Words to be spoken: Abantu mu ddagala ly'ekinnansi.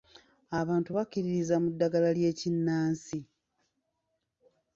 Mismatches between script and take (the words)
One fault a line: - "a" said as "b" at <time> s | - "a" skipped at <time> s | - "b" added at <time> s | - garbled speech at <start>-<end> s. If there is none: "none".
- "bakkiririza" added at 1.0 s